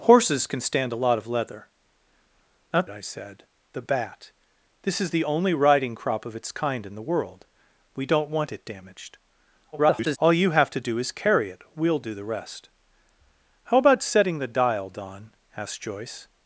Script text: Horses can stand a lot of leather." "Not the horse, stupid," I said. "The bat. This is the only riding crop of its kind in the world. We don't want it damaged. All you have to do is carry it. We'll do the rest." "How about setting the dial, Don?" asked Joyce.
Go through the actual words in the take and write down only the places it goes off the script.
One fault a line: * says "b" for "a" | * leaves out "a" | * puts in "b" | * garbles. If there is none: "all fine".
* leaves out "the horse stupid"
* garbles